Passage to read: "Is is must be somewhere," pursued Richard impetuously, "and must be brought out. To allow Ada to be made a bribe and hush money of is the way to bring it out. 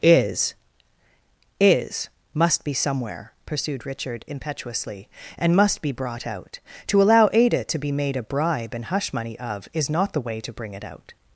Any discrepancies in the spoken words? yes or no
yes